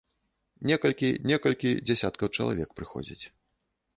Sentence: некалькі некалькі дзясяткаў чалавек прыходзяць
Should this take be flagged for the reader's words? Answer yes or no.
no